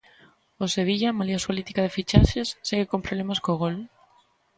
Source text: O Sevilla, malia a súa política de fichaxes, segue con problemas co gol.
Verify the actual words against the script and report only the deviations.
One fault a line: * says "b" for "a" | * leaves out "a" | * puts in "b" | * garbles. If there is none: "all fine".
* leaves out "súa"